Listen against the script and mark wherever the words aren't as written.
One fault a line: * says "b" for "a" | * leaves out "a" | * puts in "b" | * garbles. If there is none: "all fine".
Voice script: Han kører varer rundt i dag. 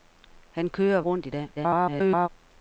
* leaves out "varer"
* garbles